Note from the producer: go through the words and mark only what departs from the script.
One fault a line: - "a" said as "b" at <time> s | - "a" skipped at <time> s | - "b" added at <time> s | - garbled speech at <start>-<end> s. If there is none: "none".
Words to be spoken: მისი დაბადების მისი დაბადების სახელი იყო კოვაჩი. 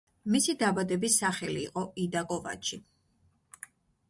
- "მისი დაბადების" skipped at 1.2 s
- "იდა" added at 2.0 s